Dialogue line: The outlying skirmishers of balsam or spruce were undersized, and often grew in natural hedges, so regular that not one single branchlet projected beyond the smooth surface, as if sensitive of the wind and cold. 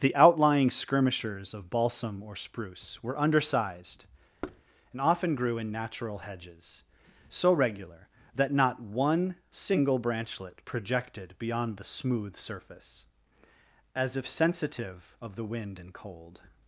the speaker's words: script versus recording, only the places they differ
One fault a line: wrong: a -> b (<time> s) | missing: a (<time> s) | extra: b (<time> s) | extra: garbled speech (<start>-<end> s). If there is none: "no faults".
no faults